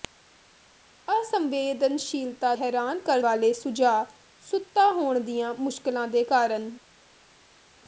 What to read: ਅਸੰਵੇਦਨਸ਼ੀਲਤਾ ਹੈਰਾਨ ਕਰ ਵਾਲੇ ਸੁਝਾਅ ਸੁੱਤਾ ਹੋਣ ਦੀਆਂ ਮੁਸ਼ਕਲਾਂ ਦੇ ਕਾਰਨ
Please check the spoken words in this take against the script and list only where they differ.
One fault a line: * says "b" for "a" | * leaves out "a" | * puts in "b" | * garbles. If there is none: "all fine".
all fine